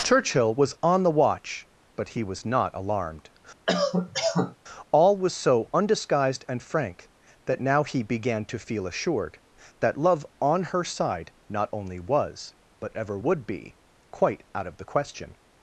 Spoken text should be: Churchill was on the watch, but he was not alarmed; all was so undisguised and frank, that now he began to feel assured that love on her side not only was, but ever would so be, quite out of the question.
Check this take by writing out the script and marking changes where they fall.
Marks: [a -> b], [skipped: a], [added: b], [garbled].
Churchill was on the watch, but he was not alarmed; all was so undisguised and frank, that now he began to feel assured that love on her side not only was, but ever would [skipped: so] be, quite out of the question.